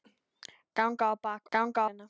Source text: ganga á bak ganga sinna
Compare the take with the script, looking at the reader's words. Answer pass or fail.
pass